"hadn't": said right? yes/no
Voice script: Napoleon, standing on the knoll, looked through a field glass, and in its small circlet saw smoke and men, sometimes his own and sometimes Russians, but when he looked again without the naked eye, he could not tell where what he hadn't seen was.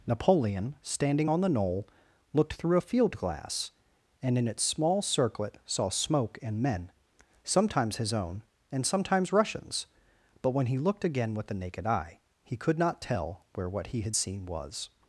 no